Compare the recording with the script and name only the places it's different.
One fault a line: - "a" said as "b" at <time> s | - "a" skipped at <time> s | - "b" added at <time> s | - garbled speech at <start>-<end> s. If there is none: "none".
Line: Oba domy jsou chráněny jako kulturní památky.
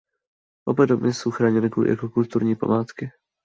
none